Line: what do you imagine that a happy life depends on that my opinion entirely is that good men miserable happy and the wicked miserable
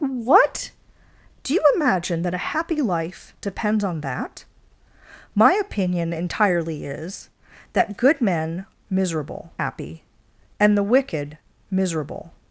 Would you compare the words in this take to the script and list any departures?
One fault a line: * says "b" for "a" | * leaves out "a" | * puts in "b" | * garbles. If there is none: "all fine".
all fine